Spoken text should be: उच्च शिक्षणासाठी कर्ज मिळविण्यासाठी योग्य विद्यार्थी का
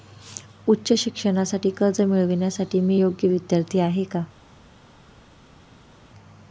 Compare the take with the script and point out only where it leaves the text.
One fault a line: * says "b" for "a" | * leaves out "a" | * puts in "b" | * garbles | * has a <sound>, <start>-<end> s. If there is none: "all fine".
* puts in "मी"
* puts in "आहे"